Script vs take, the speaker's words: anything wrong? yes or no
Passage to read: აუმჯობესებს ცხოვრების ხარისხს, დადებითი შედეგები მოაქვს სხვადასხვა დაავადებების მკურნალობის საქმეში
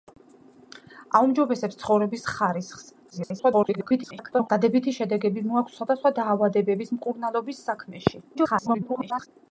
yes